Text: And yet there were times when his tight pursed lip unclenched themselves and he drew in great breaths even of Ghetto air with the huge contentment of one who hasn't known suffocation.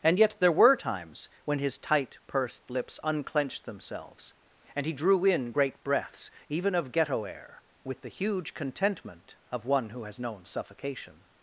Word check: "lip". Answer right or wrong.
wrong